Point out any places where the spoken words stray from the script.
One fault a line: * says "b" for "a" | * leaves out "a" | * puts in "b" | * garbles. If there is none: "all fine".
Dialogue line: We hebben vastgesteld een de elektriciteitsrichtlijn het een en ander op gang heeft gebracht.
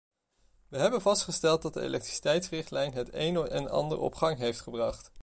* says "dat" for "een"